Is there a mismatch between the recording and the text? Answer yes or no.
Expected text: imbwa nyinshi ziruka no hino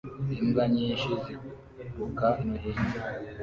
no